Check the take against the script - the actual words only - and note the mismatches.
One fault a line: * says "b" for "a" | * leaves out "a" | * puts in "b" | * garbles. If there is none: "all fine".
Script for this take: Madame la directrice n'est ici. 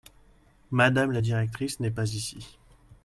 * puts in "pas"